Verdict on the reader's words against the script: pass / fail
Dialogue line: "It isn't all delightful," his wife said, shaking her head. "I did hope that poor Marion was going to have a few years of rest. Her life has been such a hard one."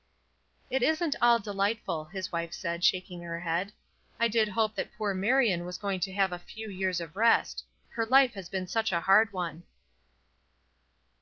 pass